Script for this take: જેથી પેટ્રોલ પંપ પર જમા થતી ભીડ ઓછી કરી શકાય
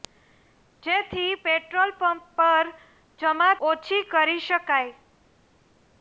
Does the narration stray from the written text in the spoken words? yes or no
yes